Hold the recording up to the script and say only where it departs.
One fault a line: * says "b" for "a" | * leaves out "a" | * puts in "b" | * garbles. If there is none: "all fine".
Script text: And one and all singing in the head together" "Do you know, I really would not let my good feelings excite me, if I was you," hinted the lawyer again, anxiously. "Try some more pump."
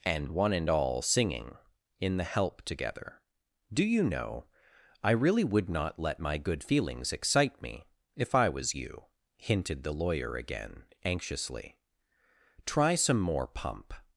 * says "help" for "head"